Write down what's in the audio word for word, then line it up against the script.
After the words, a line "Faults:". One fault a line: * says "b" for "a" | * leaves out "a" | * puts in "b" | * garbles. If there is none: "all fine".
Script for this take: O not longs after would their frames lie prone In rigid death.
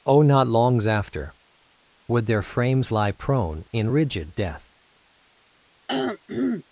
O not longs after would their frames lie prone In rigid death.
Faults:
all fine